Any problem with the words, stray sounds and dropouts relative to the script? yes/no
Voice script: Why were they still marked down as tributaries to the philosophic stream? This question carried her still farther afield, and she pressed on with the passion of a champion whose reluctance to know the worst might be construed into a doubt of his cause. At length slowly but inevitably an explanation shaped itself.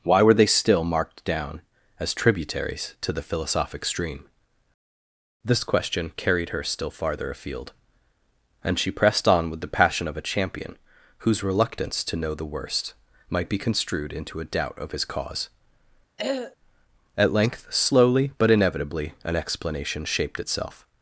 yes